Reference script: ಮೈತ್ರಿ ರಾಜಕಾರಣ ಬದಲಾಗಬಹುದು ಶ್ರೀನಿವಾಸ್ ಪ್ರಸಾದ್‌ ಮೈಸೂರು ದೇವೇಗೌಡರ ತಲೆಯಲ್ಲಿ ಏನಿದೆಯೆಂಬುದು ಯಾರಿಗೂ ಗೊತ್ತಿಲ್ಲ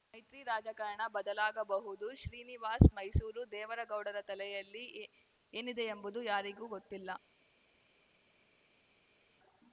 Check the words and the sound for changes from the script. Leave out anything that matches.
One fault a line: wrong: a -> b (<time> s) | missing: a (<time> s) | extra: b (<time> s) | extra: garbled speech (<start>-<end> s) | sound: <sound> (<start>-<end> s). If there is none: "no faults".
missing: ಪ್ರಸಾದ್ (2.9 s)